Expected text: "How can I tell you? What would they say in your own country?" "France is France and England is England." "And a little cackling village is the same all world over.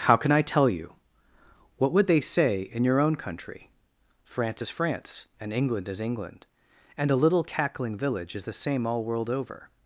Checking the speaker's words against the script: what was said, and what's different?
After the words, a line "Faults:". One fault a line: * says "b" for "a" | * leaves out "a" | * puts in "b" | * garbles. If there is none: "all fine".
"How can I tell you? What would they say in your own country?" "France is France and England is England." "And a little cackling village is the same all world over.
Faults:
all fine